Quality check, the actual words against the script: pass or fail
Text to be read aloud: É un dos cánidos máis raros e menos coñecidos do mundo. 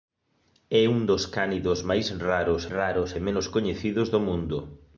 fail